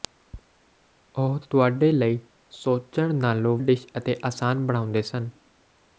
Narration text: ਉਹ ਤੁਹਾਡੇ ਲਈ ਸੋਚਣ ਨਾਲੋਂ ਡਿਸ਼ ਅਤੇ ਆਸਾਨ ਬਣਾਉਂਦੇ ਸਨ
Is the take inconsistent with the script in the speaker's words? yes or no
no